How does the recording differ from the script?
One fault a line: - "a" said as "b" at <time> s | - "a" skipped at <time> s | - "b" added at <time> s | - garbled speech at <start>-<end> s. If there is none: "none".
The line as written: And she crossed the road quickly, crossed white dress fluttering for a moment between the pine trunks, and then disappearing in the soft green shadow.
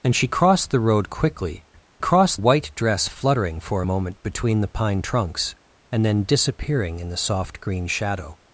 none